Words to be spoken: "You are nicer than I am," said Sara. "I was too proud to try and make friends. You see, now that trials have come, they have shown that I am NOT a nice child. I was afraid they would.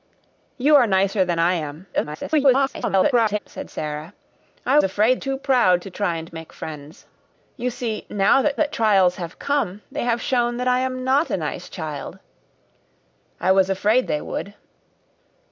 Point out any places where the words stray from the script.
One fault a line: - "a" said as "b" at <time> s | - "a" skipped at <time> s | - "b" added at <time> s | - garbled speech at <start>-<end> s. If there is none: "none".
- garbled speech at 1.9-3.4 s
- "was" said as "afraid" at 4.8 s
- "that" added at 8.6 s